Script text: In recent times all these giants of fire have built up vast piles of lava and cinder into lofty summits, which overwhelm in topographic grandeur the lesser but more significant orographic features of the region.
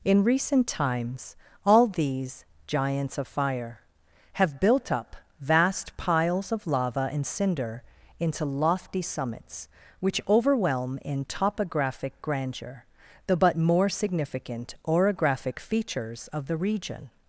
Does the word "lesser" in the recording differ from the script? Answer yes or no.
yes